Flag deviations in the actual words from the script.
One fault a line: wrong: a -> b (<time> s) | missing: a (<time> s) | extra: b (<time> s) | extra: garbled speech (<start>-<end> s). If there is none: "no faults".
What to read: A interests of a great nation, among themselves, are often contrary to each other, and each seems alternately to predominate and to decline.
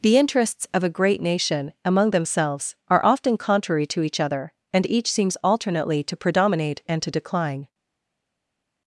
wrong: A -> The (0.0 s)